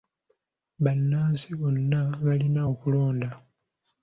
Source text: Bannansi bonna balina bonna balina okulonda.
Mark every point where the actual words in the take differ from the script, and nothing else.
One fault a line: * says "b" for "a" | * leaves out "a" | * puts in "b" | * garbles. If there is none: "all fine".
* leaves out "bonna balina"